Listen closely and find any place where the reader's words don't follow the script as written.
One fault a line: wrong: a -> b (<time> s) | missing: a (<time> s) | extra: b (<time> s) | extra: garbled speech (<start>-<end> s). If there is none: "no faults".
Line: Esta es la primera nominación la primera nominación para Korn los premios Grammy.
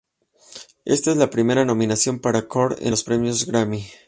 missing: la primera nominación (2.2 s)
extra: en (2.8 s)